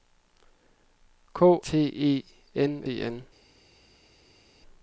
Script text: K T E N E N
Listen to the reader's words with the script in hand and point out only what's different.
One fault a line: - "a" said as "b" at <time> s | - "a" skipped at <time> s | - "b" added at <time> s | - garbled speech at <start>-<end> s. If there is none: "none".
none